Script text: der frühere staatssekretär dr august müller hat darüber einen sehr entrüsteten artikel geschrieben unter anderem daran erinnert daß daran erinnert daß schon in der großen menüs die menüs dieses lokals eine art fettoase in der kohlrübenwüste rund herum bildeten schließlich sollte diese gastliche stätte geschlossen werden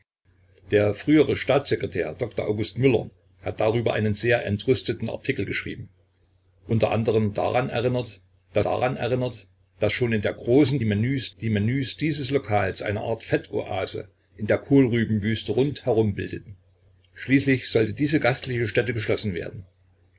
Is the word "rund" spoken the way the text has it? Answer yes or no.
yes